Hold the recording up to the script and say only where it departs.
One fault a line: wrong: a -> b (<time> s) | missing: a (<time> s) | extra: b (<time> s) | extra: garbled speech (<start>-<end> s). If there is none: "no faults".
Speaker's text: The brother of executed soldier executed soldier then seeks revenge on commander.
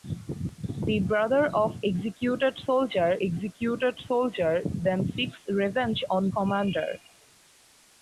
no faults